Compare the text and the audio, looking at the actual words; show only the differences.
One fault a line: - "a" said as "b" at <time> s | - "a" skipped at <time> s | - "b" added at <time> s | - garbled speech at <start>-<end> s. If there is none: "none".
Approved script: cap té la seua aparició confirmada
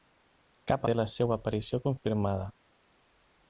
none